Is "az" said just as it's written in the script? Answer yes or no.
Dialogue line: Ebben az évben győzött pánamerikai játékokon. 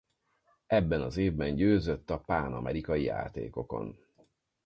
yes